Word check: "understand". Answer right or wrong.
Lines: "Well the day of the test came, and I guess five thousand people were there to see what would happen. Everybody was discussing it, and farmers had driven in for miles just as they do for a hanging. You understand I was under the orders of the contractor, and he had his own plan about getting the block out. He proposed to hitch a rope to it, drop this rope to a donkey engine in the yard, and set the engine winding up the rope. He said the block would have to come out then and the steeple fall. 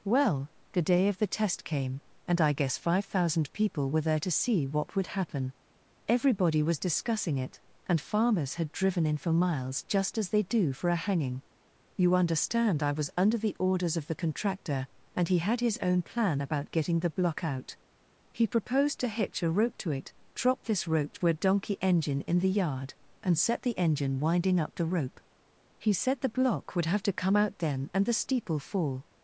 right